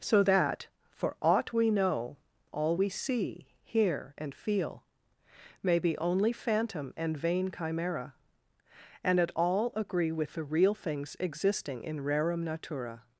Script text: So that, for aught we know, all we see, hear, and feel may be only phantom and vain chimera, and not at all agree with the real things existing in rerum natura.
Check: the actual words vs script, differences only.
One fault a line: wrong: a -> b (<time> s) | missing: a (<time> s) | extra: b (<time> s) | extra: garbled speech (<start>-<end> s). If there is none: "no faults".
missing: not (9.2 s)